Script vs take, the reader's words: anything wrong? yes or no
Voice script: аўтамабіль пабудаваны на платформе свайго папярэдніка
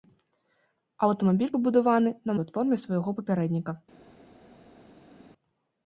no